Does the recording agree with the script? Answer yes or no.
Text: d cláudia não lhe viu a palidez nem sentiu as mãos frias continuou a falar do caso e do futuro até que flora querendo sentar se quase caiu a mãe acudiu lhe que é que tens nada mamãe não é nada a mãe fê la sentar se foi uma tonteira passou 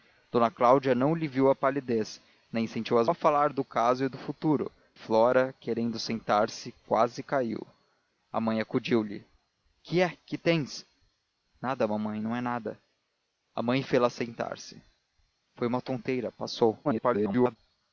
no